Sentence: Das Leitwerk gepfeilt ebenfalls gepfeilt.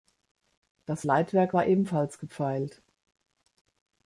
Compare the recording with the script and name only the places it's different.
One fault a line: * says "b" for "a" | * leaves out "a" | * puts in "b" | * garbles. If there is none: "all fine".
* says "war" for "gepfeilt"